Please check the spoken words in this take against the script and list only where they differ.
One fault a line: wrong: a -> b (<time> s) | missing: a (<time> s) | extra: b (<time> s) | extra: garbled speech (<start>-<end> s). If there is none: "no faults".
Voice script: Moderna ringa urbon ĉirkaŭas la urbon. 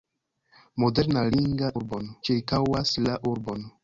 no faults